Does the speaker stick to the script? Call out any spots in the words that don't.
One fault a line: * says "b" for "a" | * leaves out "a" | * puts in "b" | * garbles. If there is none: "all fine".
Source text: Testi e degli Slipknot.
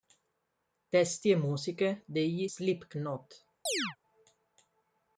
* puts in "musiche"